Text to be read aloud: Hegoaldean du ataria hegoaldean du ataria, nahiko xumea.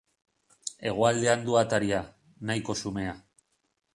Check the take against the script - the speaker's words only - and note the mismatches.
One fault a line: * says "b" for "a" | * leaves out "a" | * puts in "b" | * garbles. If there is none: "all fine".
* leaves out "hegoaldean du ataria"